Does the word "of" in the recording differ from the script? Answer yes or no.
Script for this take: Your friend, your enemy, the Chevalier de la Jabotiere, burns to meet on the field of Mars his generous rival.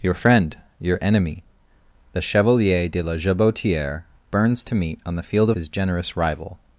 yes